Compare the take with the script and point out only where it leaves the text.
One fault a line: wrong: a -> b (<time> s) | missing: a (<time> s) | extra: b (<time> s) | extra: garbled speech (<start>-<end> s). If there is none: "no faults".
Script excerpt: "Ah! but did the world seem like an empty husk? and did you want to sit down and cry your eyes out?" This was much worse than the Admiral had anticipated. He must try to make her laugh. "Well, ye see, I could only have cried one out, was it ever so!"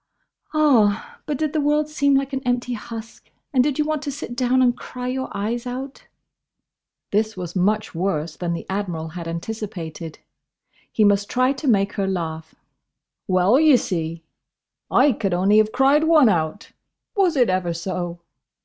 no faults